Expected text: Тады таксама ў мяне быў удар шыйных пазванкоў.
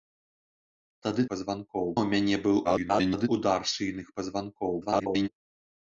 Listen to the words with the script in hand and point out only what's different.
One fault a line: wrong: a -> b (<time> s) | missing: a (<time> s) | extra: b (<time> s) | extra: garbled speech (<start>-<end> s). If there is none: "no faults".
wrong: таксама -> пазванкоў (1.3 s)
extra: garbled speech (2.6-3.3 s)
extra: garbled speech (4.8-5.3 s)